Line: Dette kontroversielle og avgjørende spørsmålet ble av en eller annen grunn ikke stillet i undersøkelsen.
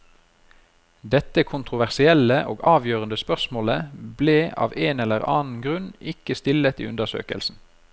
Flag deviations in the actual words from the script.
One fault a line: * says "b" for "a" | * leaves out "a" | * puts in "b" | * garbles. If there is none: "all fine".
all fine